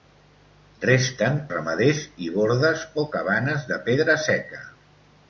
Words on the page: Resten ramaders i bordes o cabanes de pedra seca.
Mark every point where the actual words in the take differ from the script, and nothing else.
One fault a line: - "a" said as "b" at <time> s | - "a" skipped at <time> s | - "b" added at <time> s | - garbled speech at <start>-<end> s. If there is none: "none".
none